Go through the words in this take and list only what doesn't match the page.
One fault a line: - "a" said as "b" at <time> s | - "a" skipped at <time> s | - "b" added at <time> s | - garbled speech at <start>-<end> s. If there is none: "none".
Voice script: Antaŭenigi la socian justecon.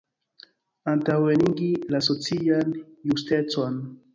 none